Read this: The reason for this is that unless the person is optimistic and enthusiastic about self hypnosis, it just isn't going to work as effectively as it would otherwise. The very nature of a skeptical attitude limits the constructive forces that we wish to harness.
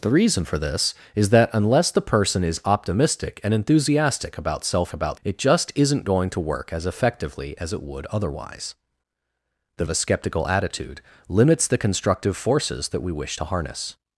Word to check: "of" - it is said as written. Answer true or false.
false